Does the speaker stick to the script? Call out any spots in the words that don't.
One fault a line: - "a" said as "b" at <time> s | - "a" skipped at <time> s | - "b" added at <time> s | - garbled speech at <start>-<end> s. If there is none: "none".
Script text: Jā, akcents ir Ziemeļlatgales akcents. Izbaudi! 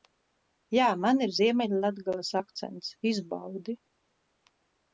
- "akcents" said as "man" at 1.0 s